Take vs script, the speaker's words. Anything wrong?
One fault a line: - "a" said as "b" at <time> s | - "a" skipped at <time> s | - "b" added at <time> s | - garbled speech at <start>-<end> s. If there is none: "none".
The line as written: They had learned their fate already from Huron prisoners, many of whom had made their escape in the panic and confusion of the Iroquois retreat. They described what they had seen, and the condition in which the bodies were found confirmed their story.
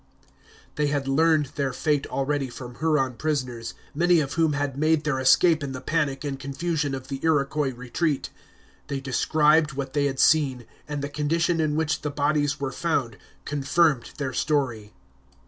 none